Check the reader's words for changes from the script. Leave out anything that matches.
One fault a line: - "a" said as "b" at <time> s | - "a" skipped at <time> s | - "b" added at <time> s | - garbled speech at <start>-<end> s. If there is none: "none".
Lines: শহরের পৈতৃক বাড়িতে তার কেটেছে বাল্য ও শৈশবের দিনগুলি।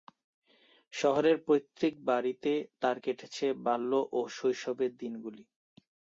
none